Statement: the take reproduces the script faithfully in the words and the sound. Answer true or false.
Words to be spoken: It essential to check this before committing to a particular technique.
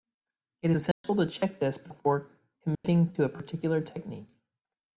false